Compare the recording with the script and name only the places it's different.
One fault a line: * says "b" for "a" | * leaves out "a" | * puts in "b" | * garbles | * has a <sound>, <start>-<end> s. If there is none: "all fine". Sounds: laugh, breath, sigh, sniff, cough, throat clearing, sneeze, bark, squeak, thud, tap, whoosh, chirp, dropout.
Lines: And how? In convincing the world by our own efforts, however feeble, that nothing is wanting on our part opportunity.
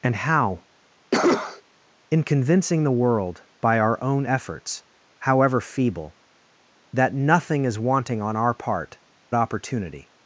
* has a cough, 1.1-1.6 s